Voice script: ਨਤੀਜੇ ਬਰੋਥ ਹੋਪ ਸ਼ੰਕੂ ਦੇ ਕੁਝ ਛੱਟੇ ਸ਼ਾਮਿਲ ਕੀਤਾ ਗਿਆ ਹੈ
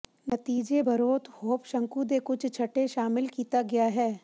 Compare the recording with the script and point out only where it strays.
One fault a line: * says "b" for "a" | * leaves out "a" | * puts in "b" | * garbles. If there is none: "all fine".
all fine